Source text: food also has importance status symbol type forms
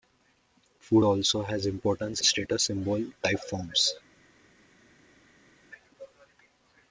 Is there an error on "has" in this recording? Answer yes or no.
no